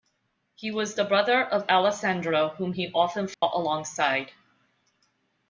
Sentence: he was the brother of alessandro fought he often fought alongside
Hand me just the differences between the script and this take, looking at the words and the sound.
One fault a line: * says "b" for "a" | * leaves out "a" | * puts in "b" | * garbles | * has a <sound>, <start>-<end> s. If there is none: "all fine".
* says "whom" for "fought"
* has a dropout, 3.3-3.4 s